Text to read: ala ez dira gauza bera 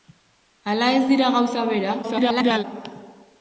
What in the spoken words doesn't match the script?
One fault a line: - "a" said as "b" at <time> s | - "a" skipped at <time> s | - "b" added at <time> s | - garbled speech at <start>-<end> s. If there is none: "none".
- garbled speech at 2.0-2.6 s